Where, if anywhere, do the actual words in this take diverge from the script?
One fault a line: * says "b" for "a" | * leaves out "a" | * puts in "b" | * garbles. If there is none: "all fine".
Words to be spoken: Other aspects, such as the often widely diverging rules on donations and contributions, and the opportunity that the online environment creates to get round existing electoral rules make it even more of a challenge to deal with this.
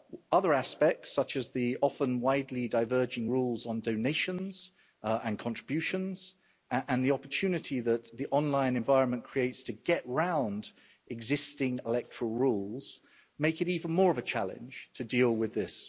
all fine